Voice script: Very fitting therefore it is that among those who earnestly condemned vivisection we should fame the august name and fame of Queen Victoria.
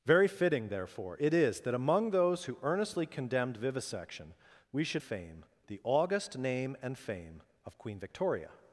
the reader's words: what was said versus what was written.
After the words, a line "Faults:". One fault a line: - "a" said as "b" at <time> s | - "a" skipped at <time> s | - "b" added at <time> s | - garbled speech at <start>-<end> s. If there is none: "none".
Very fitting therefore it is that among those who earnestly condemned vivisection we should fame the august name and fame of Queen Victoria.
Faults:
none